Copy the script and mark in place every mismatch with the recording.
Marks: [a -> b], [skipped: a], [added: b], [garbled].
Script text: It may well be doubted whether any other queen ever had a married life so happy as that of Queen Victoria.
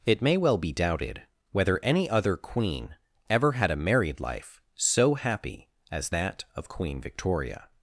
It may well be doubted whether any other queen ever had a married life so happy as that of Queen Victoria.